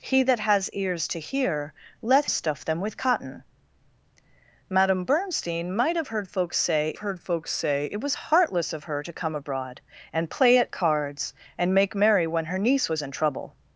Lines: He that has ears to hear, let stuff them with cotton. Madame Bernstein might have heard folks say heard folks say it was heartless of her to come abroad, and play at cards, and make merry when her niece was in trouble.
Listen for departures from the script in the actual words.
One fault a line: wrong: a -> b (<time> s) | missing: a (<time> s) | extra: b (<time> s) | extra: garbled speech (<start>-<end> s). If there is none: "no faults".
no faults